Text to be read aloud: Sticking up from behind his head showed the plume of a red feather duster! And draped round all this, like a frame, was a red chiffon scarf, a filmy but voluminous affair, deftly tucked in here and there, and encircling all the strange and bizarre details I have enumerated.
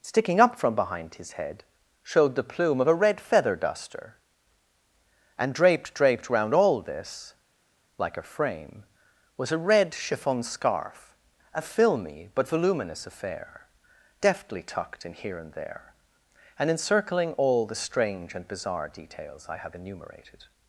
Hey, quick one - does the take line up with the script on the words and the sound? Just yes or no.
no